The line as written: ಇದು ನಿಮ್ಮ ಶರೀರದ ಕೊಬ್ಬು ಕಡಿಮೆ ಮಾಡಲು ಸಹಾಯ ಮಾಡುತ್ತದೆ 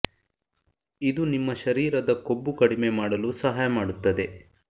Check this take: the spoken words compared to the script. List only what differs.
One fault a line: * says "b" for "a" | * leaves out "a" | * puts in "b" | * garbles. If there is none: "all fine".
all fine